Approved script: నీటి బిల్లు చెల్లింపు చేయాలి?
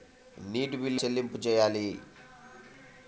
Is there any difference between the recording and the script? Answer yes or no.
no